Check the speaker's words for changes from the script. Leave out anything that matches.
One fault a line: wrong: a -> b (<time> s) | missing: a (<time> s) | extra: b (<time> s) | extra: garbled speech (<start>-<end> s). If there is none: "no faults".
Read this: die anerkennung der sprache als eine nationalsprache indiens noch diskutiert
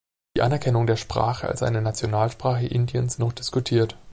no faults